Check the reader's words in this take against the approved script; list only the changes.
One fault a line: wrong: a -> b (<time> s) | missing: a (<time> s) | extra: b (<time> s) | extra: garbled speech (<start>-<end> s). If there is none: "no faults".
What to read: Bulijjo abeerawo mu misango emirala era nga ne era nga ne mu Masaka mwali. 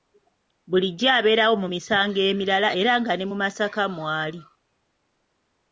missing: era nga ne (3.3 s)